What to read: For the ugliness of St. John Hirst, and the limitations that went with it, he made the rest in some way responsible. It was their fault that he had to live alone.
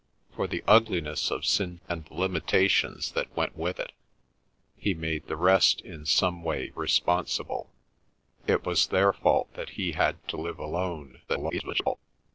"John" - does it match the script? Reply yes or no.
no